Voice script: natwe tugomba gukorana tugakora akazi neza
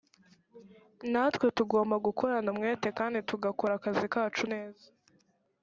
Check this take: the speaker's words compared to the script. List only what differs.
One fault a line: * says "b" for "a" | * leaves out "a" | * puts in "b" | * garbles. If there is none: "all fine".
* puts in "umwete kandi"
* puts in "kacu"